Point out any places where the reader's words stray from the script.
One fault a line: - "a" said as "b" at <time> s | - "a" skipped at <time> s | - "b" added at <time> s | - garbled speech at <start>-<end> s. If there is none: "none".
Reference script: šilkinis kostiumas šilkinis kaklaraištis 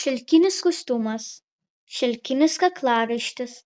none